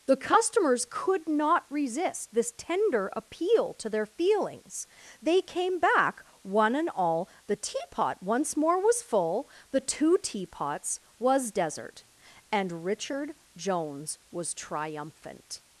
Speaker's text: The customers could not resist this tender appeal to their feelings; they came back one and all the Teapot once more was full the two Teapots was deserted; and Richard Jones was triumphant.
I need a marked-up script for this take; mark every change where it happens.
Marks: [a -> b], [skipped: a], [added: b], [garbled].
The customers could not resist this tender appeal to their feelings; they came back one and all the Teapot once more was full the two Teapots was [deserted; -> desert] and Richard Jones was triumphant.